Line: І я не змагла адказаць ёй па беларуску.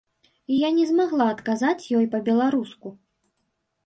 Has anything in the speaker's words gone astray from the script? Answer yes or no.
no